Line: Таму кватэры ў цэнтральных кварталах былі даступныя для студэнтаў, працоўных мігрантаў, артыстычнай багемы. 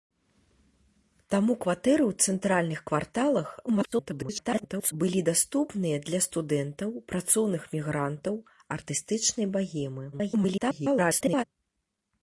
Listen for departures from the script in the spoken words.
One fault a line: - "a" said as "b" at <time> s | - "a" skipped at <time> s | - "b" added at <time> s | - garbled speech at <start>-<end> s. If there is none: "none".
- garbled speech at 3.7-4.9 s
- garbled speech at 10.1-11.4 s